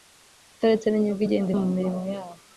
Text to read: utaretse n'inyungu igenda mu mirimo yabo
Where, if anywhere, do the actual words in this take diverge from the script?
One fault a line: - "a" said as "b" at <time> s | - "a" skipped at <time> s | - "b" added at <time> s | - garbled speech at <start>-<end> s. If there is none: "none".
none